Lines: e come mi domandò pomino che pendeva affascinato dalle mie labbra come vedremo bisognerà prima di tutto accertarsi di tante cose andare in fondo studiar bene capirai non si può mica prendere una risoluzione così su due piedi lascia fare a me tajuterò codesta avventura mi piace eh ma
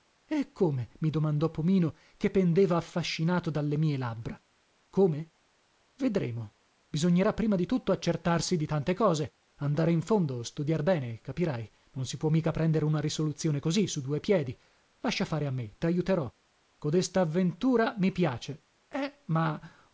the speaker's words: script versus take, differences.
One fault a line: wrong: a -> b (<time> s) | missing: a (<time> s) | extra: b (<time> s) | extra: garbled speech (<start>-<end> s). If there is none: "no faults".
no faults